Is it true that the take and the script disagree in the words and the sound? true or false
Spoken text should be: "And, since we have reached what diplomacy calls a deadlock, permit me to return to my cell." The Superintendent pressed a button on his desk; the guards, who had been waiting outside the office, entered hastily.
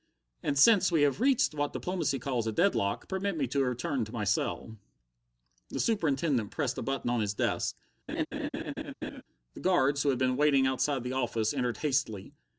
true